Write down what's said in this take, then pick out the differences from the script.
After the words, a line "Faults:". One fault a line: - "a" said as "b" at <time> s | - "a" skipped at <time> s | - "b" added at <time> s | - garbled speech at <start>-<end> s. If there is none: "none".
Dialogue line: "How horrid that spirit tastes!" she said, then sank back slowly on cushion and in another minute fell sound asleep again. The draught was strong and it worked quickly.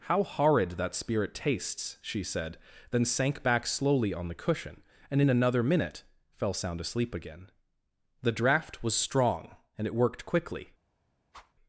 "How horrid that spirit tastes!" she said, then sank back slowly on the cushion and in another minute fell sound asleep again. The draught was strong and it worked quickly.
Faults:
- "the" added at 4.3 s